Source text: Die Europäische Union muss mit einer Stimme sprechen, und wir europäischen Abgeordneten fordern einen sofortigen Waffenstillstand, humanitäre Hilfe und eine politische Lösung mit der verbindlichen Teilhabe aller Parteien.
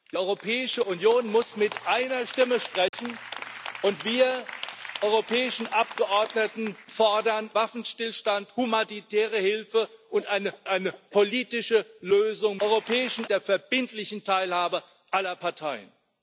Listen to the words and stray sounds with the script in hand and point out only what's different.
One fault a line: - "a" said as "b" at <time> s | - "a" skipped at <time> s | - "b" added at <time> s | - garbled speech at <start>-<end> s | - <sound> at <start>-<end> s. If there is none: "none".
- dropout at 2.9-2.9 s
- "einen sofortigen" skipped at 7.5 s
- "eine" added at 10.7 s
- "mit" said as "europäischen" at 12.6 s